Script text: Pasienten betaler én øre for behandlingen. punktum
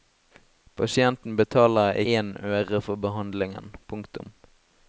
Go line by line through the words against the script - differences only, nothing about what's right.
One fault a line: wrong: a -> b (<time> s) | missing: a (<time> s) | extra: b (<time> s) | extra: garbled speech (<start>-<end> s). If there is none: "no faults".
no faults